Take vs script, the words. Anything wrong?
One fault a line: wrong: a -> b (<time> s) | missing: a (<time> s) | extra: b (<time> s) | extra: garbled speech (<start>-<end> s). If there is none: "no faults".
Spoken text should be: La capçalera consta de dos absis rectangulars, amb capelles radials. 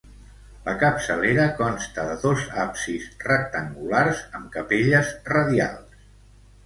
no faults